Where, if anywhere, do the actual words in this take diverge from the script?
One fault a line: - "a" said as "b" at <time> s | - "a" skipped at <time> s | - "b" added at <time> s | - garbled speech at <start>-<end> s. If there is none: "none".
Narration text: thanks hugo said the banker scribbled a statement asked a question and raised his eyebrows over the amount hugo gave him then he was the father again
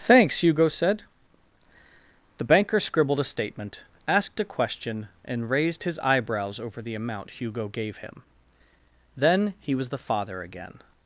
none